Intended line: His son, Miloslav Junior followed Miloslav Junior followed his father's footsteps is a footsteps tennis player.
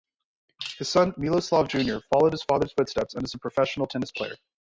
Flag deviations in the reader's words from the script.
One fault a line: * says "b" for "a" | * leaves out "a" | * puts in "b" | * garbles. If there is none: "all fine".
* leaves out "Miloslav Junior followed"
* puts in "and"
* says "professional" for "footsteps"